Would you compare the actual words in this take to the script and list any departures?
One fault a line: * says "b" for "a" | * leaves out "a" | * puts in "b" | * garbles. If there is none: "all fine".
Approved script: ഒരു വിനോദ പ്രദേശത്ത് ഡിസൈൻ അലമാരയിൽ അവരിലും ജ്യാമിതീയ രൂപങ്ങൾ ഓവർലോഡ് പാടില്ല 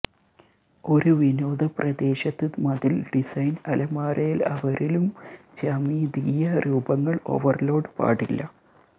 * puts in "മതിൽ"